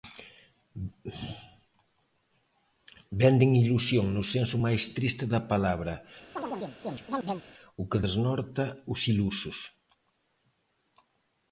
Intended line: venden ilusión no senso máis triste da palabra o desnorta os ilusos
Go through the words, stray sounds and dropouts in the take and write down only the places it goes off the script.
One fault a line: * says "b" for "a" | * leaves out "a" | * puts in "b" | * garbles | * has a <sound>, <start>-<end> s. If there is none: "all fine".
* has a chirp, 6.4-7.5 s
* puts in "que"